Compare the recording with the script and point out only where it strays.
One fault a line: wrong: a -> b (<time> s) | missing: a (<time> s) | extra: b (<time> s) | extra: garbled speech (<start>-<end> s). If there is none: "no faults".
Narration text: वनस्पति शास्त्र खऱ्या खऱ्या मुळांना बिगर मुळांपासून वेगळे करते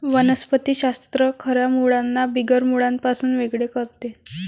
missing: खऱ्या (1.7 s)